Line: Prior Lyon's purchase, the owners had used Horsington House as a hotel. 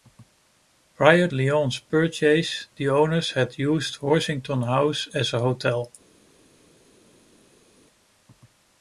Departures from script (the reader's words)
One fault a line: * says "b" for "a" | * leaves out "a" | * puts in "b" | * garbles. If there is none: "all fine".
all fine